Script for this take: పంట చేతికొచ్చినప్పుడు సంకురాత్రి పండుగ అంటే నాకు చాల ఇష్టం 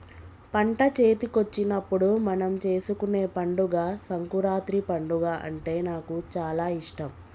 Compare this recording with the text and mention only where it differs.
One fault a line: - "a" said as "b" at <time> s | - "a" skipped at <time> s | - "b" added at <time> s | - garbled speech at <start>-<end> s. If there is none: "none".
- "మనం చేసుకునే పండుగ" added at 2.2 s